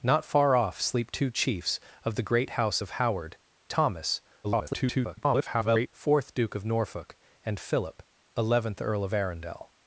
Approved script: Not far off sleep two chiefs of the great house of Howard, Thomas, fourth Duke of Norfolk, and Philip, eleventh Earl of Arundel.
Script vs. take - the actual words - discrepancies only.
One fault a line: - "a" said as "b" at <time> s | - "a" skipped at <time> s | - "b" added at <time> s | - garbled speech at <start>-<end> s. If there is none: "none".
- garbled speech at 4.4-5.9 s